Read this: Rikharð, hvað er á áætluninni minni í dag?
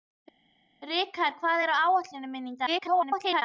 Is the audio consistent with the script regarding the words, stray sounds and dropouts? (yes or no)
no